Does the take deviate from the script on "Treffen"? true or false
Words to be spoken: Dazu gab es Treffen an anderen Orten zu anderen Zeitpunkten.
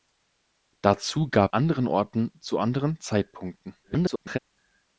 true